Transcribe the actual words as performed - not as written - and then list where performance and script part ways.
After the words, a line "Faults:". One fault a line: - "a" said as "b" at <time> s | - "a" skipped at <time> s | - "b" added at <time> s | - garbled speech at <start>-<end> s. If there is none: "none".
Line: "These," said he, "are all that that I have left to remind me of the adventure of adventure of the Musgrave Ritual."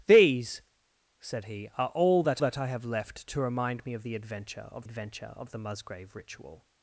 "These," said he, "are all that that I have left to remind me of the adventure of adventure of the Musgrave Ritual."
Faults:
none